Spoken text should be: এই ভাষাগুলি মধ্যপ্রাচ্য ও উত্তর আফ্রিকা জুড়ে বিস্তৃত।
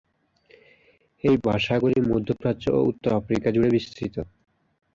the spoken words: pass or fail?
pass